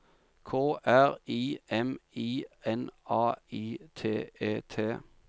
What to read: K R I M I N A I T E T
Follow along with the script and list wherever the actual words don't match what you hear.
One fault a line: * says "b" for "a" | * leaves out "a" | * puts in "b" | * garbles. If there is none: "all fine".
all fine